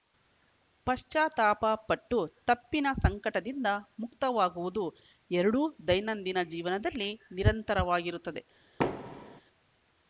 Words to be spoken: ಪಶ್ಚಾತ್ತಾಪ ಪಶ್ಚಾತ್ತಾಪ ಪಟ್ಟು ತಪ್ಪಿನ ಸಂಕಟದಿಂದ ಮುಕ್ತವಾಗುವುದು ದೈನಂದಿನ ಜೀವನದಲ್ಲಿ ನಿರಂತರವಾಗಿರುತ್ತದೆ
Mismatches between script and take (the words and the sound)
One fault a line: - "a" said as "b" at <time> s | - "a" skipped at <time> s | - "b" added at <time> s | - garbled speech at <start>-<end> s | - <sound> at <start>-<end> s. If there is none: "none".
- "ಪಶ್ಚಾತ್ತಾಪ" skipped at 1.6 s
- "ಎರಡೂ" added at 5.3 s
- thud at 8.8-9.4 s